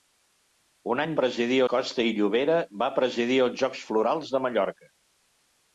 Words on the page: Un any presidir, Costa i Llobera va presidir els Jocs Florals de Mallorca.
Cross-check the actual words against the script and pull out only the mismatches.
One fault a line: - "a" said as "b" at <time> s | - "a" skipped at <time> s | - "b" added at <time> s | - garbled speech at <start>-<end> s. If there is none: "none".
none